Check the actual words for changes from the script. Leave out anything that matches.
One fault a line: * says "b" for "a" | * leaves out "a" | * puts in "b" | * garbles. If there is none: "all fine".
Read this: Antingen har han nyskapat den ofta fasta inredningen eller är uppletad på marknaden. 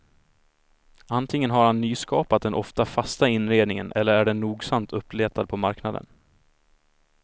* puts in "den nogsamt"